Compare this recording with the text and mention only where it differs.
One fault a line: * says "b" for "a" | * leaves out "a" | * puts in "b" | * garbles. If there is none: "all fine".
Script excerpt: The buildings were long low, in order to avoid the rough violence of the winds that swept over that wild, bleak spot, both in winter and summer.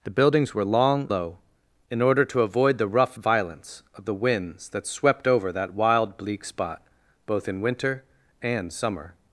all fine